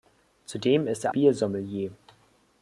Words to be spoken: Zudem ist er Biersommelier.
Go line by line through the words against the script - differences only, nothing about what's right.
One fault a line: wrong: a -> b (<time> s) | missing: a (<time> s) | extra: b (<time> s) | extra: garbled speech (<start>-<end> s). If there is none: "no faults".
no faults